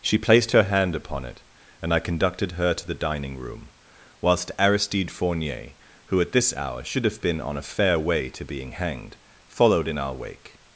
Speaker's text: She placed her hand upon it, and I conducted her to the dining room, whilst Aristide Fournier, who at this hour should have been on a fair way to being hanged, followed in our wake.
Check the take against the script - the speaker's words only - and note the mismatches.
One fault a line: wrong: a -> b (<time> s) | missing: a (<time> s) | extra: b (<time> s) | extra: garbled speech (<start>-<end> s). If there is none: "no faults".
no faults